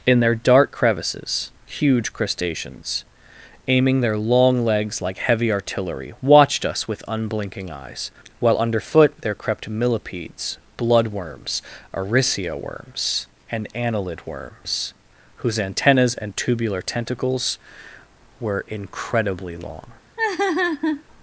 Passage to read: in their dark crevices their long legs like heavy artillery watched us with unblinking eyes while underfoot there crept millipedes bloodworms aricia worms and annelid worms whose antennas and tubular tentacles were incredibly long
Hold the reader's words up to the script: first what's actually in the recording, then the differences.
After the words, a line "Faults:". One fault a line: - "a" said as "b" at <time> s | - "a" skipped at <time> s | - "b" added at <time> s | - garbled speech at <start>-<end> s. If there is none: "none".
in their dark crevices huge crustaceans aiming their long legs like heavy artillery watched us with unblinking eyes while underfoot there crept millipedes bloodworms aricia worms and annelid worms whose antennas and tubular tentacles were incredibly long
Faults:
- "huge crustaceans aiming" added at 1.7 s